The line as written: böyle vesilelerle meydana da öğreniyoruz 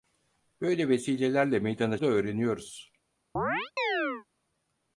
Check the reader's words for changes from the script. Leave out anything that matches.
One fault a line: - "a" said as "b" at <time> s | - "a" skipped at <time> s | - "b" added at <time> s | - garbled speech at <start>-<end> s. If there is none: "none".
none